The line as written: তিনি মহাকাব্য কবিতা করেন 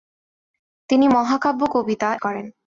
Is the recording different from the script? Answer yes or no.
no